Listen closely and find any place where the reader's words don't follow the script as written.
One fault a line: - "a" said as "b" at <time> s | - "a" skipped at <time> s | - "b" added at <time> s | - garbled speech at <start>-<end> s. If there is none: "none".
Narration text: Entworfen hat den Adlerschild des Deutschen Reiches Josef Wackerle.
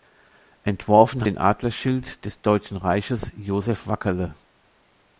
- "hat" skipped at 1.3 s